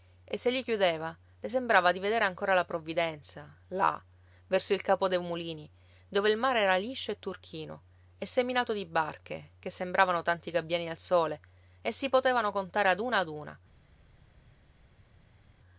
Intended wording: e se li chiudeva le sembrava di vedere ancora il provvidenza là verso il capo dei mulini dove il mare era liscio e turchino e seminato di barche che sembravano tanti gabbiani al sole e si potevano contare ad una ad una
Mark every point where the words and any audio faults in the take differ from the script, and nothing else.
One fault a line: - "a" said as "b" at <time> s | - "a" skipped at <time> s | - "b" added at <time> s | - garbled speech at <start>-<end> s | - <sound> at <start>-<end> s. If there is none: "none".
- "il" said as "la" at 2.5 s